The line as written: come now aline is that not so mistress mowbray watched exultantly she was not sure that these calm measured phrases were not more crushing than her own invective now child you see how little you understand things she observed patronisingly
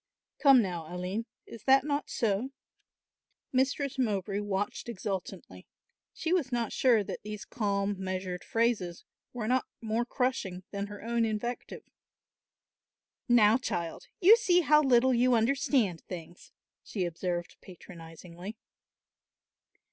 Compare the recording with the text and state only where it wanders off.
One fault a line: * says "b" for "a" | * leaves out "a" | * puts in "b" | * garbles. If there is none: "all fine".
all fine